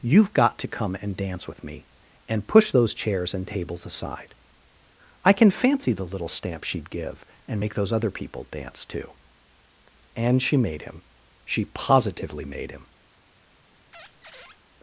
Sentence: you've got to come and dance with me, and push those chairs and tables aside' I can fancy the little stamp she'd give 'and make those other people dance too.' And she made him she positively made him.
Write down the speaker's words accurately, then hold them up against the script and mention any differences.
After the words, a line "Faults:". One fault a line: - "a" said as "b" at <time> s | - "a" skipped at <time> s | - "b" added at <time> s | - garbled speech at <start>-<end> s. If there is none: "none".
you've got to come and dance with me, and push those chairs and tables aside' I can fancy the little stamp she'd give 'and make those other people dance too.' And she made him she positively made him.
Faults:
none